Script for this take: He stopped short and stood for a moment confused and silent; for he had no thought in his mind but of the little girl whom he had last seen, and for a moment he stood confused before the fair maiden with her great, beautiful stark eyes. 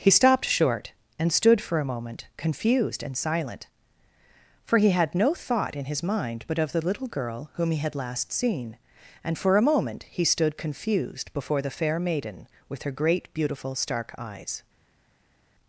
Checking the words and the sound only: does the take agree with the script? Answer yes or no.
yes